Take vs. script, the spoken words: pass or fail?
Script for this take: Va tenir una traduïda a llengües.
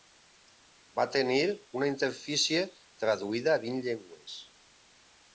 fail